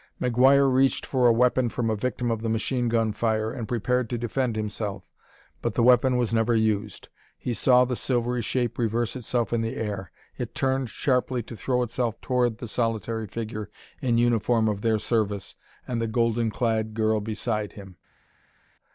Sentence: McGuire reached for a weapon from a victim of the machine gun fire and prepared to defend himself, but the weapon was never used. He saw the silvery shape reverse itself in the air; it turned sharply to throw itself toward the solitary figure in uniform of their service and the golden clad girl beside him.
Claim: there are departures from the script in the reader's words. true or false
false